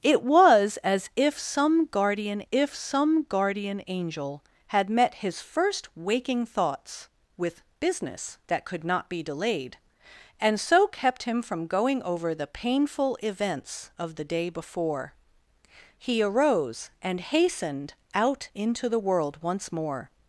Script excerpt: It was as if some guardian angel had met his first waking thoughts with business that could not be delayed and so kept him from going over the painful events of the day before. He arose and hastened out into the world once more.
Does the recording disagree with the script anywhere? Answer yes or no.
yes